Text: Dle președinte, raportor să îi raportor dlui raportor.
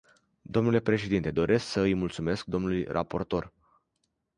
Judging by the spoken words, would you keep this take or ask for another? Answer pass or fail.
fail